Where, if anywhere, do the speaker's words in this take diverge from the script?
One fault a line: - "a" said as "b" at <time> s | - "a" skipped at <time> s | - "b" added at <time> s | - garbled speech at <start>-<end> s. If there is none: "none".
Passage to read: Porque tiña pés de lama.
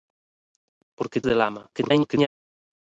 - "tiña pés" skipped at 1.2 s
- garbled speech at 1.7-2.3 s